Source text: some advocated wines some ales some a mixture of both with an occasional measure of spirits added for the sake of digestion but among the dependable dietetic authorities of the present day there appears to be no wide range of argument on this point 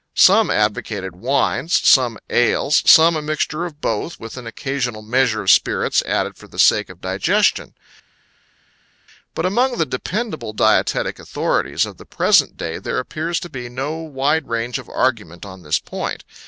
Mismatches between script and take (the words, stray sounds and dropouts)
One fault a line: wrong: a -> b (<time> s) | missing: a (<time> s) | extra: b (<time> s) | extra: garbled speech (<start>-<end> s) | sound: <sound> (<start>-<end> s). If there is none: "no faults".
no faults